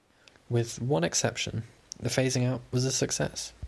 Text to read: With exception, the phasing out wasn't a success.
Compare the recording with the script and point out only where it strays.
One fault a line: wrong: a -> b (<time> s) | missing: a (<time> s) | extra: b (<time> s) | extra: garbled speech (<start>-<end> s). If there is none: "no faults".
extra: one (0.8 s)
wrong: wasn't -> was (2.7 s)